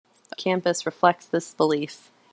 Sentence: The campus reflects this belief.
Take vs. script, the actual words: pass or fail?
pass